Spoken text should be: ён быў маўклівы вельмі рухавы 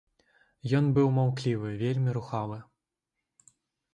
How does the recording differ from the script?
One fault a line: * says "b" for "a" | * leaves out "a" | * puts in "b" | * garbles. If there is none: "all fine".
all fine